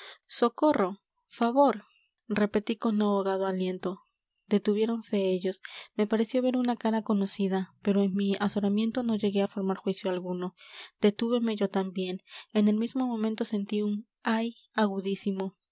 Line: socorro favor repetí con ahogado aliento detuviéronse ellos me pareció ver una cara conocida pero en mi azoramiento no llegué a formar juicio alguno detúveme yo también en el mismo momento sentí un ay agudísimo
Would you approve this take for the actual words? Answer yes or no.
yes